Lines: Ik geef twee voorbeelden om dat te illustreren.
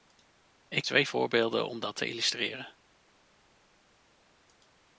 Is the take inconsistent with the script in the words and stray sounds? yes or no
yes